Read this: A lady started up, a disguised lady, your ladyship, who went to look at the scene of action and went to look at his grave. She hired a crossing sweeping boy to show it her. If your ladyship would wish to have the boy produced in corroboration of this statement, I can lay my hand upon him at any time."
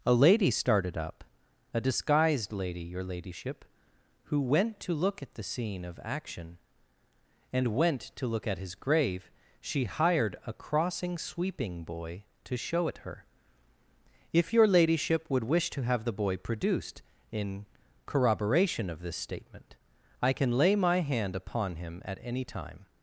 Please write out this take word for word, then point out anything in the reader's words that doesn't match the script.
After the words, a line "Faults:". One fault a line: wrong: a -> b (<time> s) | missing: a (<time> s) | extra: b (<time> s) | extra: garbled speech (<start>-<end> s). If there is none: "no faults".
A lady started up, a disguised lady, your ladyship, who went to look at the scene of action and went to look at his grave. She hired a crossing sweeping boy to show it her. If your ladyship would wish to have the boy produced in corroboration of this statement, I can lay my hand upon him at any time."
Faults:
no faults